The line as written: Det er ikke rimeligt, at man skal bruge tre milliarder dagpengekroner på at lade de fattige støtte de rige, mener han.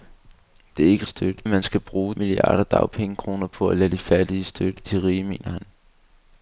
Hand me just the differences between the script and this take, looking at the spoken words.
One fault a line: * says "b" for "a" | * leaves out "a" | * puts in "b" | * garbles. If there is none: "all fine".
* says "støtte" for "rimeligt"
* leaves out "tre"